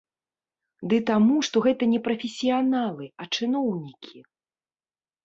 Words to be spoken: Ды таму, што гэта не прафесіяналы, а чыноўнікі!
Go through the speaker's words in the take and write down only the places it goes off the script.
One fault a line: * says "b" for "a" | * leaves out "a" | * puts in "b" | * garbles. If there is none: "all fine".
all fine